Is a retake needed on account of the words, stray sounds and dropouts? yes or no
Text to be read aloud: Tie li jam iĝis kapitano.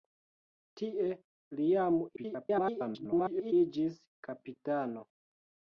yes